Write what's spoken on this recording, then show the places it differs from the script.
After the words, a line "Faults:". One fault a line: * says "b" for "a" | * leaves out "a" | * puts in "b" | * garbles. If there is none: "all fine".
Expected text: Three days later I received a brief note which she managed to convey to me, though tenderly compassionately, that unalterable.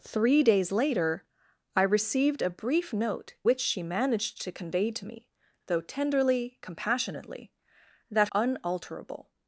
Three days later I received a brief note which she managed to convey to me, though tenderly compassionately, that unalterable.
Faults:
all fine